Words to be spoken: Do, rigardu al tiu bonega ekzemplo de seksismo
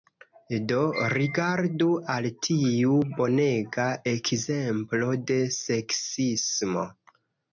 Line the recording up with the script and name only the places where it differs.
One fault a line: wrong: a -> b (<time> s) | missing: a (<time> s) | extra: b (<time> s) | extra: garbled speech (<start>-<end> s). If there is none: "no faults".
no faults